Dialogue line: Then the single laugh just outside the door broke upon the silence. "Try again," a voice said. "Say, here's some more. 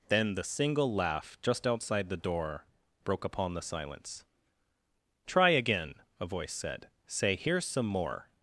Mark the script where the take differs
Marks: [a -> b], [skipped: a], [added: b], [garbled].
Then the single laugh just outside the door broke upon the silence. "Try again," a voice said. "Say, here's some more.